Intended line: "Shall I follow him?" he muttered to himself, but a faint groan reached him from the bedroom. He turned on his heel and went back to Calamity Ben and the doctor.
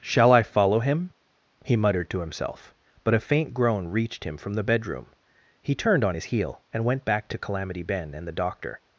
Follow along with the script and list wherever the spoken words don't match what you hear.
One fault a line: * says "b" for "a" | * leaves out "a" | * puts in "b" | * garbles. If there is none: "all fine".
all fine